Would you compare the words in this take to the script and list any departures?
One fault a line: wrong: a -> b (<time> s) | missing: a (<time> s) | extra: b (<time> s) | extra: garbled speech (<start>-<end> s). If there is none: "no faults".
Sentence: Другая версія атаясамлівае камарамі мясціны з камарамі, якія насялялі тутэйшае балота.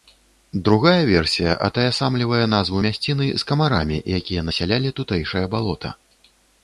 wrong: камарамі -> назву (2.5 s)